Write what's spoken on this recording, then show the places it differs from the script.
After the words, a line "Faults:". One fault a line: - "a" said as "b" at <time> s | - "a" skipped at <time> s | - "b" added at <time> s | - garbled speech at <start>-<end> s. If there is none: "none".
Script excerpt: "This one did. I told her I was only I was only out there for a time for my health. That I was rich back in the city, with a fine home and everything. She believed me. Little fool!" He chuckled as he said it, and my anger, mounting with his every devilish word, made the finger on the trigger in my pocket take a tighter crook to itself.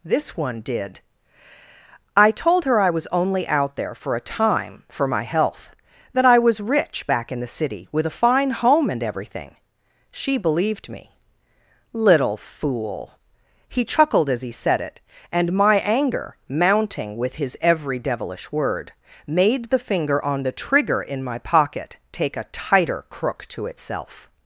"This one did. I told her I was only out there for a time for my health. That I was rich back in the city, with a fine home and everything. She believed me. Little fool!" He chuckled as he said it, and my anger, mounting with his every devilish word, made the finger on the trigger in my pocket take a tighter crook to itself.
Faults:
- "I was only" skipped at 3.5 s